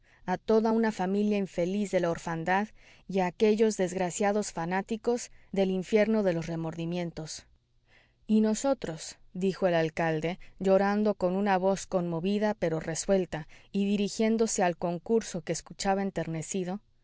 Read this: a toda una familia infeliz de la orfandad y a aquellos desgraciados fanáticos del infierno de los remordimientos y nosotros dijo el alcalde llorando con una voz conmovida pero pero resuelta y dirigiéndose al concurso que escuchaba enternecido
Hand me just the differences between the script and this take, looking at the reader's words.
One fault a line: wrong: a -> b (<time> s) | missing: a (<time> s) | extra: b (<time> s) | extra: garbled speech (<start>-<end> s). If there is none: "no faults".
missing: pero (12.8 s)